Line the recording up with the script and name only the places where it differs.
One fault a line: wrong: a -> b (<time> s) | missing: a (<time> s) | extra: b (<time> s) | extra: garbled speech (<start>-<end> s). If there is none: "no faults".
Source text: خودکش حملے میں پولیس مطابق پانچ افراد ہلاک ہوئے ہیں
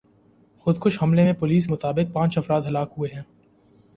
no faults